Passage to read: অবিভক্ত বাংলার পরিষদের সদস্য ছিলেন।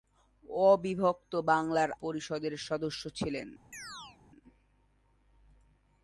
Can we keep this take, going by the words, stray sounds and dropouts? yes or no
no